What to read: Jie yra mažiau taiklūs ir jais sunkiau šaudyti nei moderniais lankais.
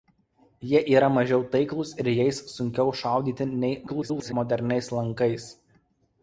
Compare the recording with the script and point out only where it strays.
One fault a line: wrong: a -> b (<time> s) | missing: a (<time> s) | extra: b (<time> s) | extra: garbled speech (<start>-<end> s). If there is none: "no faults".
extra: garbled speech (3.9-4.3 s)